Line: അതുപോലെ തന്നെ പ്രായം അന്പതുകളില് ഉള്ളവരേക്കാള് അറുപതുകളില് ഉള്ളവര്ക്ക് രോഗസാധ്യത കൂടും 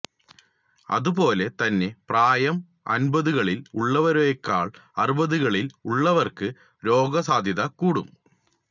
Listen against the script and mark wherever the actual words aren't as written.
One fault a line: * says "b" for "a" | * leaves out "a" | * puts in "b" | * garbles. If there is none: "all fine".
all fine